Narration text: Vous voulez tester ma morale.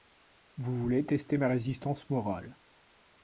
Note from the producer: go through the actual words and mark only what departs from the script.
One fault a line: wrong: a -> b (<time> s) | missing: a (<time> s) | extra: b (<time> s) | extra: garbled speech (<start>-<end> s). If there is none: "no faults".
extra: résistance (1.5 s)